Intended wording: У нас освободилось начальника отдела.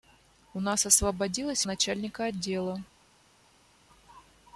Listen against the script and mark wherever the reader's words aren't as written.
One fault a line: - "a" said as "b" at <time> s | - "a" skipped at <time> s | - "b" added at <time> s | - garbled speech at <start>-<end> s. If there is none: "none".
none